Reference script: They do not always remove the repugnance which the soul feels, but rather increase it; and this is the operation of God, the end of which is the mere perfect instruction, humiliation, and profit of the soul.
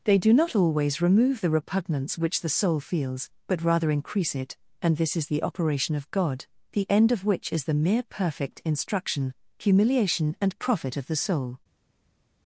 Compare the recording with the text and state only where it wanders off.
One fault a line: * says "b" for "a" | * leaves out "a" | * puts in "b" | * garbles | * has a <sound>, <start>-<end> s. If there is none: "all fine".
all fine